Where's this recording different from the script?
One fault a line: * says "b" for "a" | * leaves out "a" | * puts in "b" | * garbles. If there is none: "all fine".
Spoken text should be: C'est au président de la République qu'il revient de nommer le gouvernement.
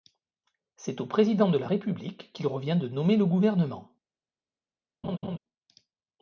all fine